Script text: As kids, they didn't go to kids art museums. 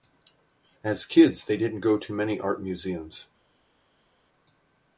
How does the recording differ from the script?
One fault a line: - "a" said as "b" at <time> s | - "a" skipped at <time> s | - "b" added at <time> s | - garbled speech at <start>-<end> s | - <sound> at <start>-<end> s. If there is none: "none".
- "kids" said as "many" at 2.1 s